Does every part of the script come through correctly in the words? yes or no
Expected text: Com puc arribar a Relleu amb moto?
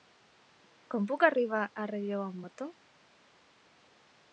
yes